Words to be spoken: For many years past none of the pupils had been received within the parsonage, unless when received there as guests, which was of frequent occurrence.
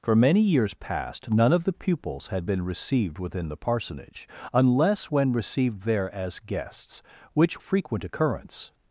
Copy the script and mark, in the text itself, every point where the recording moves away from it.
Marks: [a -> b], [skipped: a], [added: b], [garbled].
For many years past none of the pupils had been received within the parsonage, unless when received there as guests, which [skipped: was of] frequent occurrence.